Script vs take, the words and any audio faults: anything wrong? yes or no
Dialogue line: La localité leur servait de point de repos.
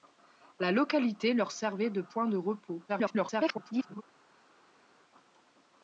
yes